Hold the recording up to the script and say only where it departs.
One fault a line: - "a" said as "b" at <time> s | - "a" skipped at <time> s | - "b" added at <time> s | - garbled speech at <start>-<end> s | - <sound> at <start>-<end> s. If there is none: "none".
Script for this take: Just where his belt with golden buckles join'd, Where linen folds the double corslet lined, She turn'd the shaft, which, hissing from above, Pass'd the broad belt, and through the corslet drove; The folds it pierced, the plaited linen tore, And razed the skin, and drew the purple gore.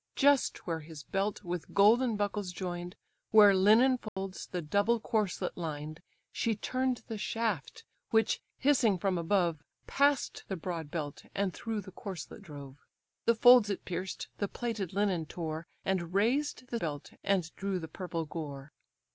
- dropout at 4.1-4.2 s
- "skin" said as "belt" at 16.8 s